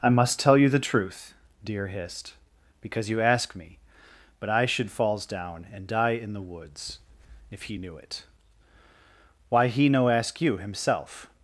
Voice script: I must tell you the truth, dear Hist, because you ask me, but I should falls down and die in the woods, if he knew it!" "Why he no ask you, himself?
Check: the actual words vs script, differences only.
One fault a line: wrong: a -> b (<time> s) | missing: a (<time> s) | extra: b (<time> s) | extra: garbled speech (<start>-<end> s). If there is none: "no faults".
no faults